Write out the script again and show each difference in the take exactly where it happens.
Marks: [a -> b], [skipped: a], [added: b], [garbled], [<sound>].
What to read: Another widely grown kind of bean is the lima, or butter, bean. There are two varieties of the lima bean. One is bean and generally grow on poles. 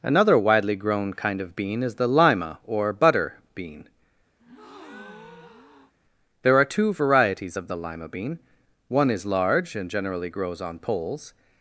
Another widely grown kind of bean is the lima, or butter, bean. [breath] There are two varieties of the lima bean. One is [bean -> large] and generally [grow -> grows] on poles.